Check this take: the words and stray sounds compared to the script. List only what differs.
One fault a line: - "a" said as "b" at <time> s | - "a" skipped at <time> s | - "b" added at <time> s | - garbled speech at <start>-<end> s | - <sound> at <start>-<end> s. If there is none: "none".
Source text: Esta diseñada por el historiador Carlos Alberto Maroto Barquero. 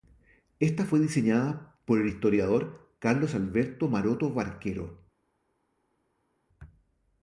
- "fue" added at 0.8 s